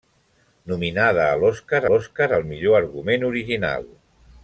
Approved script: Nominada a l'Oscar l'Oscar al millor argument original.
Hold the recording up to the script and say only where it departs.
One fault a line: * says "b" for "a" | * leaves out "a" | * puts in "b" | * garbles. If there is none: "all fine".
all fine